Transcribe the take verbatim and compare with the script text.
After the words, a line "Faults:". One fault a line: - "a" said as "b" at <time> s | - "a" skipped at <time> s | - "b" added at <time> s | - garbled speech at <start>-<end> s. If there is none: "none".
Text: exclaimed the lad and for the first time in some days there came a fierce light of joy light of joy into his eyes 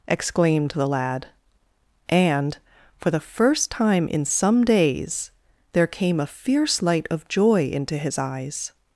exclaimed the lad and for the first time in some days there came a fierce light of joy into his eyes
Faults:
- "light of joy" skipped at 7.7 s